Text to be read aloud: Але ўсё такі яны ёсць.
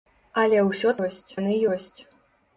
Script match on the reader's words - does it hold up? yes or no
no